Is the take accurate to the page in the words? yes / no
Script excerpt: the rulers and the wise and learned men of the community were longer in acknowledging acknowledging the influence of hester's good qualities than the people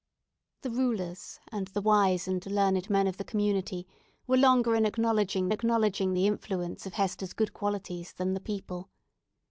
yes